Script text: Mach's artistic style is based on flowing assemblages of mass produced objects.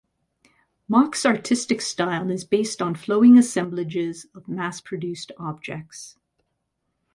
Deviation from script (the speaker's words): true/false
false